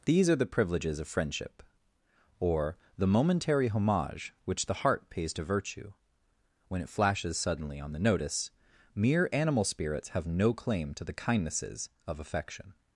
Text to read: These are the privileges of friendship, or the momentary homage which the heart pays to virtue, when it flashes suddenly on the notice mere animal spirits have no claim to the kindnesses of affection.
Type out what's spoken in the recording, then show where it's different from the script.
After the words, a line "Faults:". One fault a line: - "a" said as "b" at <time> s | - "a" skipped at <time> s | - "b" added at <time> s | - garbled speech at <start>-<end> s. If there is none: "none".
These are the privileges of friendship, or the momentary homage which the heart pays to virtue, when it flashes suddenly on the notice mere animal spirits have no claim to the kindnesses of affection.
Faults:
none